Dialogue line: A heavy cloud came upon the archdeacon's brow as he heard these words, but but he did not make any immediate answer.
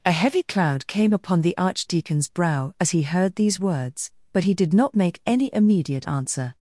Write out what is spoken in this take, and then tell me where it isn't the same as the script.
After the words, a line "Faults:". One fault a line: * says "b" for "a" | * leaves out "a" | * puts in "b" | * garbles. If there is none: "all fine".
A heavy cloud came upon the archdeacon's brow as he heard these words, but he did not make any immediate answer.
Faults:
* leaves out "but"